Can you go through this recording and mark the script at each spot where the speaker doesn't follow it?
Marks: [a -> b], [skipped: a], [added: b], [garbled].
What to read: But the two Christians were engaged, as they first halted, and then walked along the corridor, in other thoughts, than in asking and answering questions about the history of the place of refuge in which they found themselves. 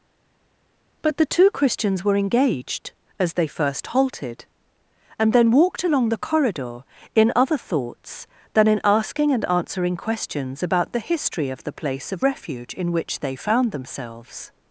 But the two Christians were engaged, as they first halted, and then walked along the corridor, in other thoughts, than in asking and answering questions about the history of the place of refuge in which they found themselves.